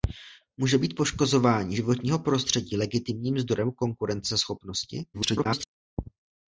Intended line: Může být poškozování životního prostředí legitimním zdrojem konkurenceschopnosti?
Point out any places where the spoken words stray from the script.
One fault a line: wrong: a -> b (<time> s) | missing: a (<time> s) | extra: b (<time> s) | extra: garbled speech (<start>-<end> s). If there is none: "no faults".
extra: garbled speech (5.1-5.7 s)